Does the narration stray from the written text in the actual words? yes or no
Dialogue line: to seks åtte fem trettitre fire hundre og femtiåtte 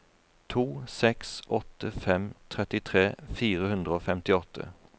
no